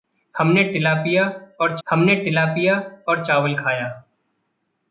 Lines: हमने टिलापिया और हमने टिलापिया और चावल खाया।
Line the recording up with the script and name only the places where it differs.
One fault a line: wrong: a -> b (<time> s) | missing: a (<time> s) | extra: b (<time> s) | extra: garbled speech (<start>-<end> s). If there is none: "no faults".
no faults